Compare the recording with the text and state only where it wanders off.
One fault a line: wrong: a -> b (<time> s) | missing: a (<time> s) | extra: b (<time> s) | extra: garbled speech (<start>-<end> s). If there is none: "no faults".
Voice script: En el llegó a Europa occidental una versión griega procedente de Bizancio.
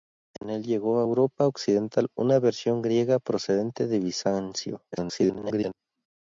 extra: garbled speech (4.9-5.7 s)